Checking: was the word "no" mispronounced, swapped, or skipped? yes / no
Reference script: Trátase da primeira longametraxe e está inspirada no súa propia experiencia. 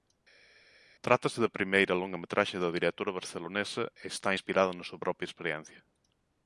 yes